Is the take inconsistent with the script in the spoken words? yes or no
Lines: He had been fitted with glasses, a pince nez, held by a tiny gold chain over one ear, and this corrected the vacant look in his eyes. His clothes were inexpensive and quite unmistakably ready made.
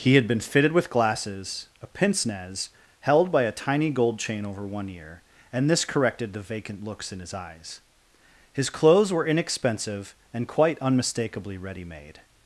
yes